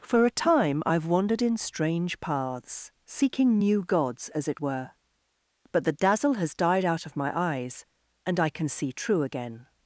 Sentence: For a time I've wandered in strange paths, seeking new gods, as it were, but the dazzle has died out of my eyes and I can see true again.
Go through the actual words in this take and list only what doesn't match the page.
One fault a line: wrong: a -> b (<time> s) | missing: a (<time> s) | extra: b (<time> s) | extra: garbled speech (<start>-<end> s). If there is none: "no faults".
no faults